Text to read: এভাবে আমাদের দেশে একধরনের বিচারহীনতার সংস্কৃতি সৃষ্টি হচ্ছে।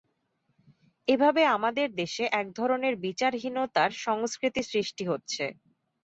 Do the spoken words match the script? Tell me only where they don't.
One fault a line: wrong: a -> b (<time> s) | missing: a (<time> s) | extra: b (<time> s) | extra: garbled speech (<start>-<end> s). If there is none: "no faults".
no faults